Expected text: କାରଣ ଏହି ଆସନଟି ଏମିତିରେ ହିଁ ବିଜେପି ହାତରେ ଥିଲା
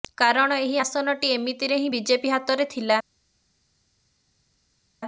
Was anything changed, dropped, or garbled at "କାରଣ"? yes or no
no